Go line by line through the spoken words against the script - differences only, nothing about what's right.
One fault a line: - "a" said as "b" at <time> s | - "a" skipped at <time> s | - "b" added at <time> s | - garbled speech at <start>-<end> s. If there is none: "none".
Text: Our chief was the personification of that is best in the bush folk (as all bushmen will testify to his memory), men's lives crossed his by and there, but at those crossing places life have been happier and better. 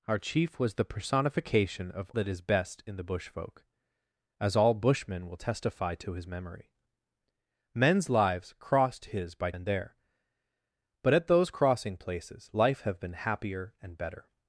none